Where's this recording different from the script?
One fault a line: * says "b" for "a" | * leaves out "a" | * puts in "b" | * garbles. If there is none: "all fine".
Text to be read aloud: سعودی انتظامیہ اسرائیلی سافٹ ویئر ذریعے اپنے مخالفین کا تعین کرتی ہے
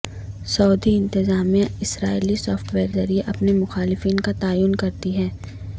all fine